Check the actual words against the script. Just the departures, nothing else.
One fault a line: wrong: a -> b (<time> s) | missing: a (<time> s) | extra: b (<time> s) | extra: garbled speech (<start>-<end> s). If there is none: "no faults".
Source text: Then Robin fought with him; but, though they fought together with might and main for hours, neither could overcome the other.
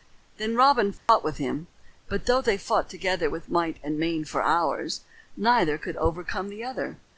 no faults